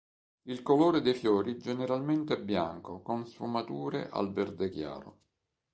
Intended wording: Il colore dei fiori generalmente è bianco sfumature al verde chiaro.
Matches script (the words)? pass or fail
fail